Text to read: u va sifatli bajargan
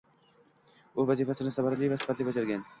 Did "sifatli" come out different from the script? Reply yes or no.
no